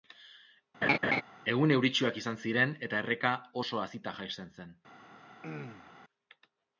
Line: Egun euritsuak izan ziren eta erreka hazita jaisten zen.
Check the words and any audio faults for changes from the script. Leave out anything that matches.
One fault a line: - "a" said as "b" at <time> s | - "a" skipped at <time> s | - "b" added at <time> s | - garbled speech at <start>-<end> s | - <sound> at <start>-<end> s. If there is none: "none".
- laugh at 0.8-1.2 s
- "oso" added at 3.6 s
- throat clearing at 5.4-5.9 s